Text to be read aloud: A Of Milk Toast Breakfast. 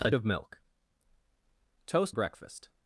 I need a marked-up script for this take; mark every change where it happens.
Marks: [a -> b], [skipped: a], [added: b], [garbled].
A Of Milk Toast Breakfast.